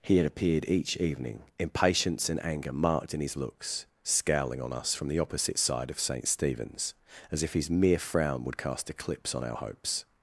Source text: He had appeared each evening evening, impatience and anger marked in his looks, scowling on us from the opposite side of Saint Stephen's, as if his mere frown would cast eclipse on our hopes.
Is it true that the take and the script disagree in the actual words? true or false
true